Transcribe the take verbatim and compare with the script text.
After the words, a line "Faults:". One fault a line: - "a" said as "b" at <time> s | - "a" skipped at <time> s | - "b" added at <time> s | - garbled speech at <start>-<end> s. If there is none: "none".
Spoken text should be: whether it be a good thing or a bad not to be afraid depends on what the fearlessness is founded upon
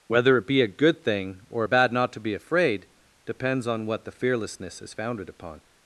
whether it be a good thing or a bad not to be afraid depends on what the fearlessness is founded upon
Faults:
none